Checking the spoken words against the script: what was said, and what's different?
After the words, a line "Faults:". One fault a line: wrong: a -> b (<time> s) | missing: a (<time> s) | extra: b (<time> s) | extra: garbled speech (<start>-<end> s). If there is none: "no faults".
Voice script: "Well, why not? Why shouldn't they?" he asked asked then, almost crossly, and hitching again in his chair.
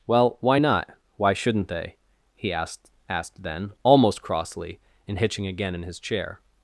"Well, why not? Why shouldn't they?" he asked asked then, almost crossly, and hitching again in his chair.
Faults:
no faults